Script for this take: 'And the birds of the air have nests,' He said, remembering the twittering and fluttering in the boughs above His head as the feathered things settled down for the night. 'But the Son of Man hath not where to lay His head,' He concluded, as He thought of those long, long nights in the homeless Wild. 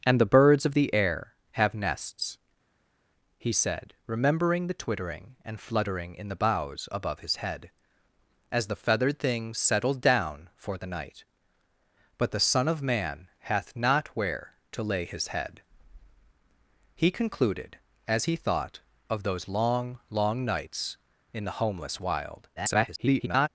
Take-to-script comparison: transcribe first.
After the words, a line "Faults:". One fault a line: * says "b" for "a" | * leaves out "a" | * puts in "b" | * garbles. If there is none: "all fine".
'And the birds of the air have nests,' He said, remembering the twittering and fluttering in the boughs above His head as the feathered things settled down for the night. 'But the Son of Man hath not where to lay His head,' He concluded, as He thought of those long, long nights in the homeless Wild. [garbled]
Faults:
* garbles